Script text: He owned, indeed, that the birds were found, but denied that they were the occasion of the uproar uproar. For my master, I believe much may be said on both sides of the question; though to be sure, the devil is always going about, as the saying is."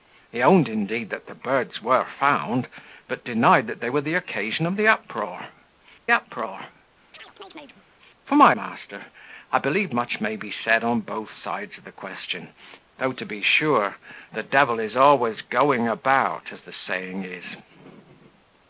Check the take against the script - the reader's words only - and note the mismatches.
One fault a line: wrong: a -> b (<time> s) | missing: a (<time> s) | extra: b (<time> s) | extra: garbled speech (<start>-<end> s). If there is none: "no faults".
no faults